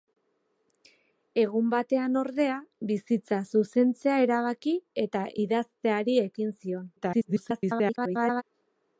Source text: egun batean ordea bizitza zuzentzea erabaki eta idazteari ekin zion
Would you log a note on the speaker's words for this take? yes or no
yes